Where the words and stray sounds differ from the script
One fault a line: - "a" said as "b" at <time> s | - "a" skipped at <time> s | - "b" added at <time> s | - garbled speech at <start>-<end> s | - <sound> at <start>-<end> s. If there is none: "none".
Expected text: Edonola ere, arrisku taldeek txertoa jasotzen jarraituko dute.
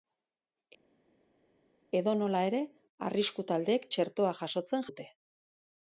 - "jarraituko" skipped at 4.9 s